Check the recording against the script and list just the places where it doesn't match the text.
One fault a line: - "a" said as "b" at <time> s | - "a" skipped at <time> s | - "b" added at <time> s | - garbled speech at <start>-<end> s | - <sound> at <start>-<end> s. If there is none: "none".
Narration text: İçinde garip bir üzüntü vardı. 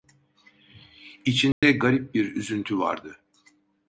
- dropout at 1.5-1.6 s